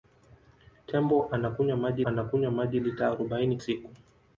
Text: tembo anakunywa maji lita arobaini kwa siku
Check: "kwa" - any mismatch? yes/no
yes